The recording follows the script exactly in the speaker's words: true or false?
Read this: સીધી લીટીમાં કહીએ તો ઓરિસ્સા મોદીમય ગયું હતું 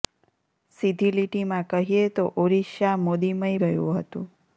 true